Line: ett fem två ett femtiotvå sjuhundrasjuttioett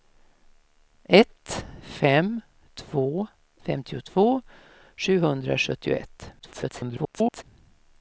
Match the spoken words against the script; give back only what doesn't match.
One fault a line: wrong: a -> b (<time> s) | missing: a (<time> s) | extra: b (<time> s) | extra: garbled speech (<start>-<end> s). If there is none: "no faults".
missing: ett (3.3 s)
extra: garbled speech (6.4-7.4 s)